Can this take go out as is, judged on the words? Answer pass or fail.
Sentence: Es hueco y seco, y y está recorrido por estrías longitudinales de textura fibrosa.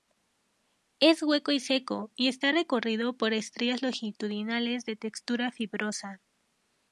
fail